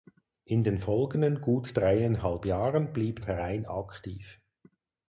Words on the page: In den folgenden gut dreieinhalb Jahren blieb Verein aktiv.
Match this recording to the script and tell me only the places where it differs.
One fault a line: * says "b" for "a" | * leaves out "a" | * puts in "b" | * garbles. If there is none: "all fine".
all fine